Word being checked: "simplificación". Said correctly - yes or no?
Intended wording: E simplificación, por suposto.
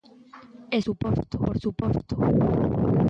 no